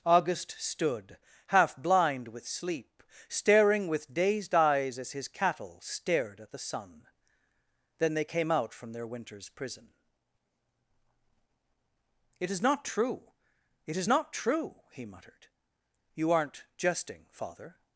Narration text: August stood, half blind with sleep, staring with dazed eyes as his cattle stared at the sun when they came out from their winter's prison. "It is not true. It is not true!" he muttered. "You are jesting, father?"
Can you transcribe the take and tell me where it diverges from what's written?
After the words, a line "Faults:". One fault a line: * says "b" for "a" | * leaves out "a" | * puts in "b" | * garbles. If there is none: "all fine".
August stood, half blind with sleep, staring with dazed eyes as his cattle stared at the sun then they came out from their winter's prison. "It is not true. It is not true!" he muttered. "You aren't jesting, father?"
Faults:
* says "then" for "when"
* says "aren't" for "are"